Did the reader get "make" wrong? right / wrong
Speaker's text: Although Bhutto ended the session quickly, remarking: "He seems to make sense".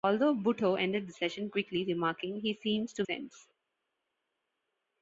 wrong